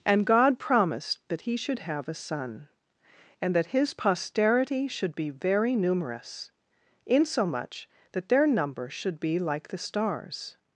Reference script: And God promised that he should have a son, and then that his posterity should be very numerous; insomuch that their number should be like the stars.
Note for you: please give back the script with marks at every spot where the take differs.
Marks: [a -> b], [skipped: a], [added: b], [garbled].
And God promised that he should have a son, and [skipped: then] that his posterity should be very numerous; insomuch that their number should be like the stars.